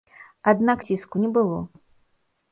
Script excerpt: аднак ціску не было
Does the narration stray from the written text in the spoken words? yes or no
no